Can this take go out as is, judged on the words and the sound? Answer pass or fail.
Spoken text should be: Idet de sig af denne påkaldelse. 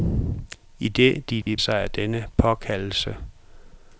fail